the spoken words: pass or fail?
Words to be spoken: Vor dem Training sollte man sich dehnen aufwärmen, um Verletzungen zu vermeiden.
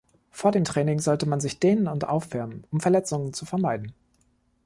fail